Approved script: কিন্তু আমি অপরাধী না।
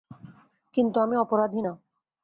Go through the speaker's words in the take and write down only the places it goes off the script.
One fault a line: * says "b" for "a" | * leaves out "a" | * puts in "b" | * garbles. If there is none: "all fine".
all fine